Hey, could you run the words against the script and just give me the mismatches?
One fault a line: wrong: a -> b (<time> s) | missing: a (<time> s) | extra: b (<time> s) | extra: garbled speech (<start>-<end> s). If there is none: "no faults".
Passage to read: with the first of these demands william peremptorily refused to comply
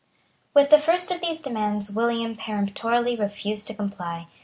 no faults